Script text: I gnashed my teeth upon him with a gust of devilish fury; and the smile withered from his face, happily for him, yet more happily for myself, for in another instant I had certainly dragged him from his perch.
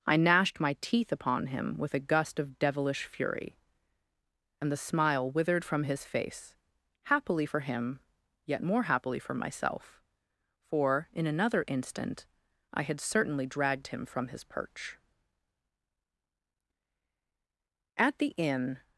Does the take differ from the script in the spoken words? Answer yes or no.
yes